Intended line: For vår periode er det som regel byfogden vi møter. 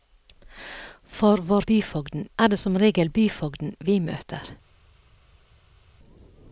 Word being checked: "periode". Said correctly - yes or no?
no